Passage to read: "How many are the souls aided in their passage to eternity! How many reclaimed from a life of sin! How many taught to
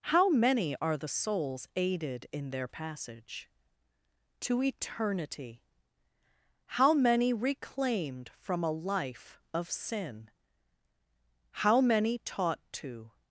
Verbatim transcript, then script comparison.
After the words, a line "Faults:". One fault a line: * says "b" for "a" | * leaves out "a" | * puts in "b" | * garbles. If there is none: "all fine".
"How many are the souls aided in their passage to eternity! How many reclaimed from a life of sin! How many taught to
Faults:
all fine